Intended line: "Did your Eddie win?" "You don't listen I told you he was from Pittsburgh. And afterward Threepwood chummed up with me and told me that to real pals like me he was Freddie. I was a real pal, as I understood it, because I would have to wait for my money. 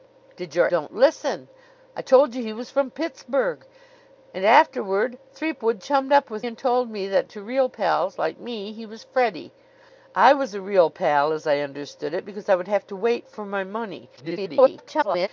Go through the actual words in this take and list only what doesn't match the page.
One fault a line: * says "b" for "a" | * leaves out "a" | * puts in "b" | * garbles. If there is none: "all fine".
* leaves out "Eddie win You"
* leaves out "me"
* garbles